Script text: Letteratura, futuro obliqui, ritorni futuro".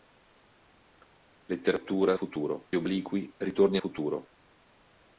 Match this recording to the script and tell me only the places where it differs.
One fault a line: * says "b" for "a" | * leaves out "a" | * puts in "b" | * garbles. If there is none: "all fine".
all fine